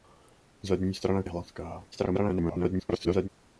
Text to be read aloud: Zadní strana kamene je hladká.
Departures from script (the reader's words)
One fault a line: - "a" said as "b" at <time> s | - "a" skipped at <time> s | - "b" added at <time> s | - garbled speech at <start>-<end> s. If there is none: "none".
- "kamene" skipped at 1.2 s
- garbled speech at 1.9-3.3 s